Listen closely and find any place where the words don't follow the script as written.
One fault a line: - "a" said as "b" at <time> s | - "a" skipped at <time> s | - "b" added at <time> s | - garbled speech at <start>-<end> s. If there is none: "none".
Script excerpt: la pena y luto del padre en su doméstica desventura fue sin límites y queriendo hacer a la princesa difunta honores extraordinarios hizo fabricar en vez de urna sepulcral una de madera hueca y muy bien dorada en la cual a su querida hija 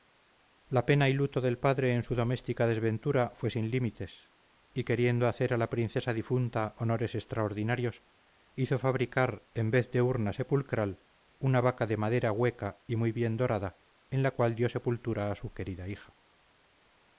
- "vaca" added at 11.6 s
- "dio sepultura" added at 14.5 s